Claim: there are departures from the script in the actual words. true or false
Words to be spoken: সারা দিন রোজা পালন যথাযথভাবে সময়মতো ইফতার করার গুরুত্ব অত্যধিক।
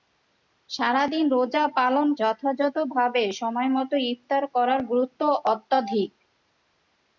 false